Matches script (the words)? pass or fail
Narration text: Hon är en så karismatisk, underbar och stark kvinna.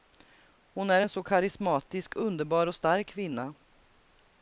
pass